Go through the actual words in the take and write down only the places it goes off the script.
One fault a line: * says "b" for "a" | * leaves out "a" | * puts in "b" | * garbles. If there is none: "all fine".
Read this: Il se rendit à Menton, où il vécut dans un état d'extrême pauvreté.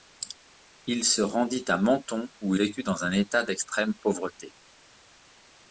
* leaves out "il"